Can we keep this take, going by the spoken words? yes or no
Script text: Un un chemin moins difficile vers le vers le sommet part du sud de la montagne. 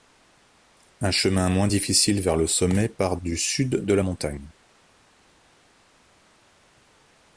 no